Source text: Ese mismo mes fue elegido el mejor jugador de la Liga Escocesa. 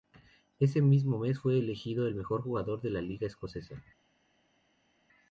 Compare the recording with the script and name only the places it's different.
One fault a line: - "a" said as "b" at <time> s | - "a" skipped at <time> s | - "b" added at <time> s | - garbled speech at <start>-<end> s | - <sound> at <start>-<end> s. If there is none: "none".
none